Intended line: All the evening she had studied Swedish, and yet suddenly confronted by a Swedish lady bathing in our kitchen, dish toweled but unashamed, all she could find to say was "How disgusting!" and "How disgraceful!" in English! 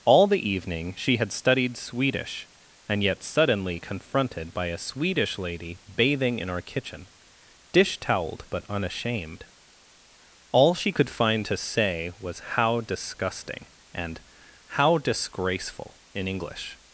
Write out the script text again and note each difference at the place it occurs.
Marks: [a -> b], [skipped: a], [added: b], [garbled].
All the evening she had studied Swedish, and yet suddenly confronted by a Swedish lady bathing in our kitchen, dish toweled but unashamed, all she could find to say was "How disgusting!" and "How disgraceful!" in English!